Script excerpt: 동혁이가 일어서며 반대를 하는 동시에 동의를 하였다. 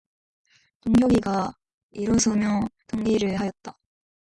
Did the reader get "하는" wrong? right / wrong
wrong